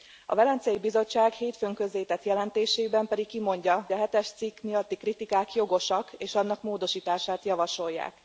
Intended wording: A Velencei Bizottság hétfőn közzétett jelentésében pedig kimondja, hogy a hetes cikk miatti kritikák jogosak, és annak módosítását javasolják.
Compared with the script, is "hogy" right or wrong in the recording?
wrong